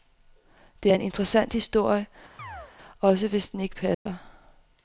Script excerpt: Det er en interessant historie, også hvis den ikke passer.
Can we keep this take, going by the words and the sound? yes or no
no